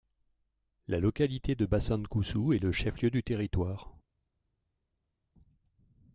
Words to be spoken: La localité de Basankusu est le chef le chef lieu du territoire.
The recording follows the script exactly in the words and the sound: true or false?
false